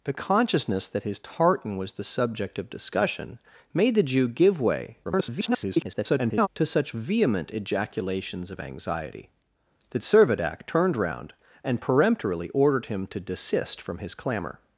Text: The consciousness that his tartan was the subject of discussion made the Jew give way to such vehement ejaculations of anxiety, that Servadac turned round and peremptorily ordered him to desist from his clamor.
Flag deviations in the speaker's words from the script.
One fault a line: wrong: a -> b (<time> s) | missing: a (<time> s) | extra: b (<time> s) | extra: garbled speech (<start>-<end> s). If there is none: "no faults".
extra: garbled speech (5.0-6.5 s)